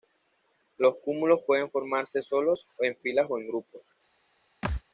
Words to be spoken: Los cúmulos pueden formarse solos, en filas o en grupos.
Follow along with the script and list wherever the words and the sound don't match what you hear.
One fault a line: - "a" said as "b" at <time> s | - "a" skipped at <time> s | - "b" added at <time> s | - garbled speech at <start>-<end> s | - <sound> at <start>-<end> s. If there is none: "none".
- thud at 4.6-4.8 s